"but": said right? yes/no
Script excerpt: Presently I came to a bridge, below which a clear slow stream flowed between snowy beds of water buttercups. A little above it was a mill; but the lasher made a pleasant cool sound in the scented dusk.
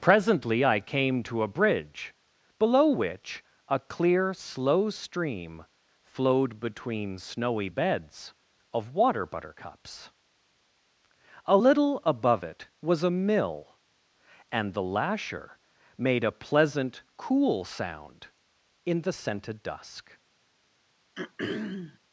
no